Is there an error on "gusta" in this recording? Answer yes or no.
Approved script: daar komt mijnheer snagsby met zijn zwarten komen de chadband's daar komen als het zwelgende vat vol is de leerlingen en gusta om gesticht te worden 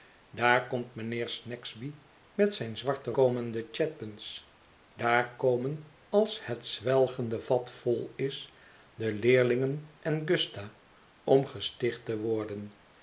no